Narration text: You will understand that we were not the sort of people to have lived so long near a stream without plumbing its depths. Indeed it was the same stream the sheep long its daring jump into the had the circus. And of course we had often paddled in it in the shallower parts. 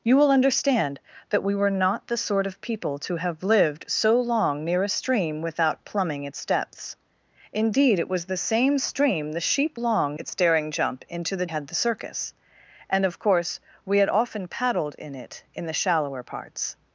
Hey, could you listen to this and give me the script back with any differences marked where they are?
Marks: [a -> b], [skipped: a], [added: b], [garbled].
You will understand that we were not the sort of people to have lived so long near a stream without plumbing its depths. Indeed it was the same stream the sheep long its daring jump into the had the circus. And of course we had often paddled in it in the shallower parts.